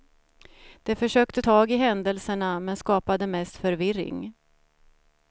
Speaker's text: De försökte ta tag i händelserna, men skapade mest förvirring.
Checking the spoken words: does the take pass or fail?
fail